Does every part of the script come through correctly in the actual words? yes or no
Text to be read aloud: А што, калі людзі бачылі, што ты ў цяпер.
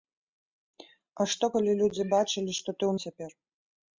yes